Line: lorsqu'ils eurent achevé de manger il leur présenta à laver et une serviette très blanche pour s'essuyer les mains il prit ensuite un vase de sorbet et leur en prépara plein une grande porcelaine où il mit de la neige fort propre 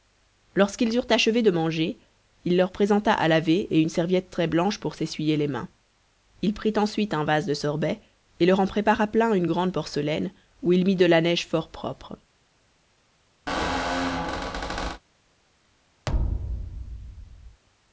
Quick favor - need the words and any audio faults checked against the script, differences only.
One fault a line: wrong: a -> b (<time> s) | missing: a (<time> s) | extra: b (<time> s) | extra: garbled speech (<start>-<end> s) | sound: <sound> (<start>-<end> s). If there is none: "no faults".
sound: squeak (13.5-15.0 s)
sound: thud (16.1-17.6 s)